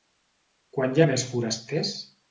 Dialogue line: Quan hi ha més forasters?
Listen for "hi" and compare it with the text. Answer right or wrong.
right